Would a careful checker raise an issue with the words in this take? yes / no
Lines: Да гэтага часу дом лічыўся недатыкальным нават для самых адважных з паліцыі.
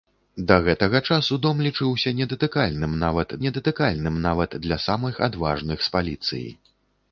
yes